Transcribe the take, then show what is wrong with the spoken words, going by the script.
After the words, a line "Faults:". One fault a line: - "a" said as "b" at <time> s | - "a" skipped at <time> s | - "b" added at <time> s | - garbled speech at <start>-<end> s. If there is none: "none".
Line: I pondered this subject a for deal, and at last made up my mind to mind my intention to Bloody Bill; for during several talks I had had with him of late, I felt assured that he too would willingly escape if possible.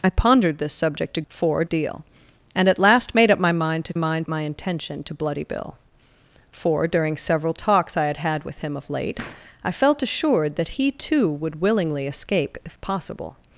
I pondered this subject a for deal, and at last made up my mind to mind my intention to Bloody Bill; for during several talks I had had with him of late, I felt assured that he too would willingly escape if possible.
Faults:
none